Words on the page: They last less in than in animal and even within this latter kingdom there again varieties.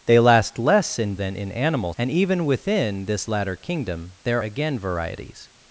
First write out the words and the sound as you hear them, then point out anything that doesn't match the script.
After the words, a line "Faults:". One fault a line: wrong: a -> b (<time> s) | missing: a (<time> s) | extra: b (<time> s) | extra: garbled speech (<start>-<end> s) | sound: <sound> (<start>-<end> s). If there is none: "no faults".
They last less in than in animal and even within this latter kingdom there again varieties.
Faults:
no faults